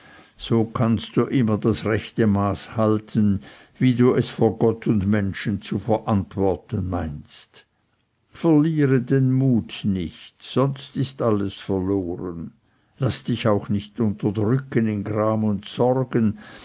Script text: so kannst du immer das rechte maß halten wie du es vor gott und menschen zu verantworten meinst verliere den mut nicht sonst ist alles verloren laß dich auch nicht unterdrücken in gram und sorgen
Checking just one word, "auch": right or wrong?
right